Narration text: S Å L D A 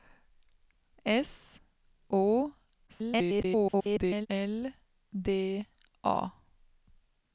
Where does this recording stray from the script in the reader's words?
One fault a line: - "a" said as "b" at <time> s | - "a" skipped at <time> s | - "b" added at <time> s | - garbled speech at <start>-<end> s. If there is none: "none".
- garbled speech at 2.9-4.3 s